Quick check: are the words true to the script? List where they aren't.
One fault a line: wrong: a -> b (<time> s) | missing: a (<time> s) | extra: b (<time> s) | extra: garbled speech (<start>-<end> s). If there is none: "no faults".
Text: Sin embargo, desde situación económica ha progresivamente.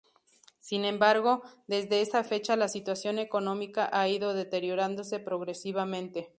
extra: esa fecha la (2.0 s)
extra: ido deteriorándose (4.1 s)